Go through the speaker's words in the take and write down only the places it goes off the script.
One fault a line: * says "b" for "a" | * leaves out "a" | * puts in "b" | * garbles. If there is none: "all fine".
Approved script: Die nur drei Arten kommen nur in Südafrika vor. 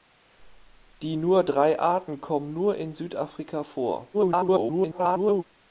* garbles